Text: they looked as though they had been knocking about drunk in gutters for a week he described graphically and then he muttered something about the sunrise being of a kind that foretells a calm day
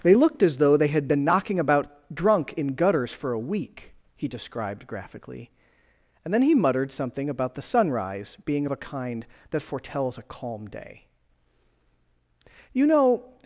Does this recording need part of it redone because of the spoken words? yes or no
yes